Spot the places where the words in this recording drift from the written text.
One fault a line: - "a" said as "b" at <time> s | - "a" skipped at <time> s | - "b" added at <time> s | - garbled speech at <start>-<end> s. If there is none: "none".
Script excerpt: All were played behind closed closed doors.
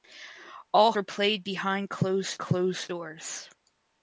none